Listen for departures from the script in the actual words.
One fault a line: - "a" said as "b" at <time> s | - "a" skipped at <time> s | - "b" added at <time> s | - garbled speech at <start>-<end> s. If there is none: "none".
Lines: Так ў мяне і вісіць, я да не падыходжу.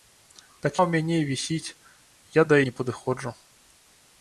none